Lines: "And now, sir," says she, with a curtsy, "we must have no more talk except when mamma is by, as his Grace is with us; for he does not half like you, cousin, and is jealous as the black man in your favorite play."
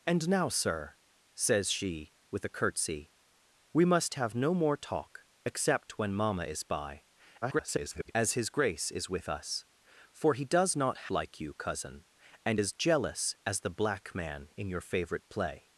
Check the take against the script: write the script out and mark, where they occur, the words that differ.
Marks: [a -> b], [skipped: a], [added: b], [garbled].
"And now, sir," says she, with a curtsy, "we must have no more talk except when mamma is by, [garbled] as his Grace is with us; for he does not [skipped: half] like you, cousin, and is jealous as the black man in your favorite play."